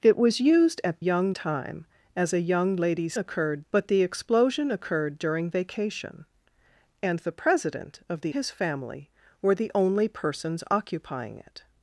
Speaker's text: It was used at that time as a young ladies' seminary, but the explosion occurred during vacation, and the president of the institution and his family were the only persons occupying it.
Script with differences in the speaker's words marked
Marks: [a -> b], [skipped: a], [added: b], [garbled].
It was used at [that -> young] time as a young ladies' [seminary, -> occurred] but the explosion occurred during vacation, and the president of the [skipped: institution and] his family were the only persons occupying it.